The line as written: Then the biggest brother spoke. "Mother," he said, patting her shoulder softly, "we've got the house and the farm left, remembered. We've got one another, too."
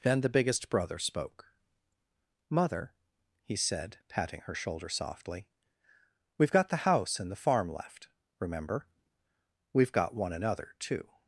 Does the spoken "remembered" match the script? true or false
false